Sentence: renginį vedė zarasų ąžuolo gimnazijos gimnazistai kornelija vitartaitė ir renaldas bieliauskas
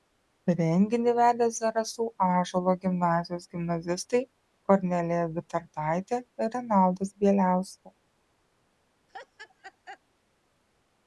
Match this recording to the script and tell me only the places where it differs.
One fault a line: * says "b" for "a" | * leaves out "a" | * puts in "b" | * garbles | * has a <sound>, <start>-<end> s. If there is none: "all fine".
* has a laugh, 9.1-10.0 s